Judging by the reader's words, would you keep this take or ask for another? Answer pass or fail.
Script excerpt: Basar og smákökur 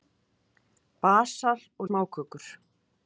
pass